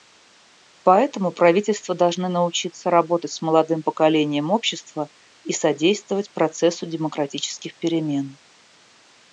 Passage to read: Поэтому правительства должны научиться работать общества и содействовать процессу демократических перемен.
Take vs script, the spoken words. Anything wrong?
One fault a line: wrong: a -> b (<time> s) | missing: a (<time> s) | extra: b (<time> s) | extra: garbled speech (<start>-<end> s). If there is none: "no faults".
extra: с молодым поколением (3.3 s)